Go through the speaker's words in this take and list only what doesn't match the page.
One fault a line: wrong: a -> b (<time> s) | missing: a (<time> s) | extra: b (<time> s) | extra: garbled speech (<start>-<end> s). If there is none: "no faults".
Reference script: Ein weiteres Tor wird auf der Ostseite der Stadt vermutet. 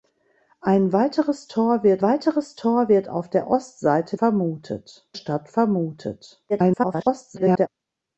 extra: weiteres Tor wird (2.0 s)
wrong: der -> vermutet (4.1 s)
extra: garbled speech (6.5-7.7 s)